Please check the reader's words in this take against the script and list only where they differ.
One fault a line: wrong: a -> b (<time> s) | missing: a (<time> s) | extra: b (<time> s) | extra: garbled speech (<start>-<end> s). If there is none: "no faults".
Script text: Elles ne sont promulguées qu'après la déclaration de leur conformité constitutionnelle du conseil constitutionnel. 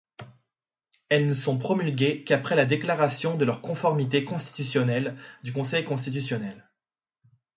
no faults